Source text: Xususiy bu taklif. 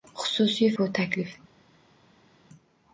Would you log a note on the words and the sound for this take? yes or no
no